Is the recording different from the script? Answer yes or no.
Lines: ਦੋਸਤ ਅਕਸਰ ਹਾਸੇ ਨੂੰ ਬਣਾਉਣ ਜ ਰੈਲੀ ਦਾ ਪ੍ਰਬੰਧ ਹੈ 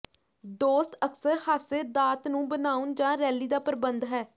yes